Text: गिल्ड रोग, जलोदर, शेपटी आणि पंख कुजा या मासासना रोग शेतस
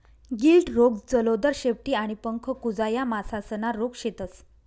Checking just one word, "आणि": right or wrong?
right